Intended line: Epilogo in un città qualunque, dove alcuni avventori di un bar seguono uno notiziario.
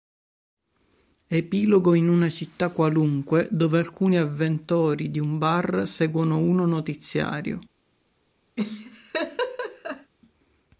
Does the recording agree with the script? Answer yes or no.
no